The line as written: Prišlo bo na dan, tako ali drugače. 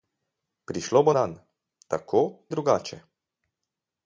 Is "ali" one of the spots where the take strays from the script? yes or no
yes